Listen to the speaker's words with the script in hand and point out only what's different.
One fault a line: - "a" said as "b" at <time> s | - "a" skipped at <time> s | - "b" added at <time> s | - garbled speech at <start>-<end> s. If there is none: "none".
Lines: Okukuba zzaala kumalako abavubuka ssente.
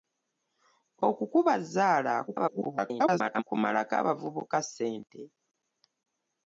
- garbled speech at 2.3-3.4 s